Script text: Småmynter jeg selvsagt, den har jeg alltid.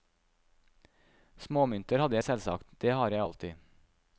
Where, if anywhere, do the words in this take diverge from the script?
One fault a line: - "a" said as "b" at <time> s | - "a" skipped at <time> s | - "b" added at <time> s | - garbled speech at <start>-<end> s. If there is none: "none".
- "hadde" added at 2.0 s
- "den" said as "det" at 2.8 s